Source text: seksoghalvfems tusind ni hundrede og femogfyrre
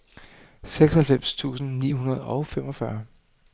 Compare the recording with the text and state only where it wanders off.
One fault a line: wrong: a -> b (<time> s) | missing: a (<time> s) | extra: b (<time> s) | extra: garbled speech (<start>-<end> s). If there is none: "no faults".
no faults